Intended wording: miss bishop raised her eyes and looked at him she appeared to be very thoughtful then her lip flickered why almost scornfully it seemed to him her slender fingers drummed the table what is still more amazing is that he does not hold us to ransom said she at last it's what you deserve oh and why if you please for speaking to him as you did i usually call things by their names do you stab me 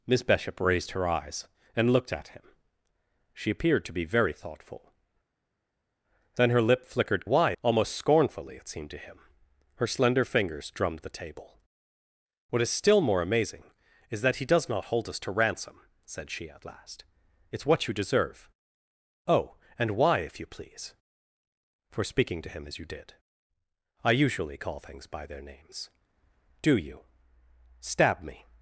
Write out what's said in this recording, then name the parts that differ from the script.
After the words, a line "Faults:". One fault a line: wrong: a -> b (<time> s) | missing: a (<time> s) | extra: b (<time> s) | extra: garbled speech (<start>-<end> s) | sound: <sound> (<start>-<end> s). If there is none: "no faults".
miss bishop raised her eyes and looked at him she appeared to be very thoughtful then her lip flickered why almost scornfully it seemed to him her slender fingers drummed the table what is still more amazing is that he does not hold us to ransom said she at last it's what you deserve oh and why if you please for speaking to him as you did i usually call things by their names do you stab me
Faults:
no faults